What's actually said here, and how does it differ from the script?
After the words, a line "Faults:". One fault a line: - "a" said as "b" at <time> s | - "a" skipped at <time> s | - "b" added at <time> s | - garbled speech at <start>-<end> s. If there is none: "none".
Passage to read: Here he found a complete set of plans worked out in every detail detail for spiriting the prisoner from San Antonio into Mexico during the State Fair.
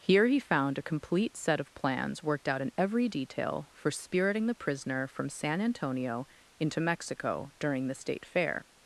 Here he found a complete set of plans worked out in every detail for spiriting the prisoner from San Antonio into Mexico during the State Fair.
Faults:
- "detail" skipped at 3.7 s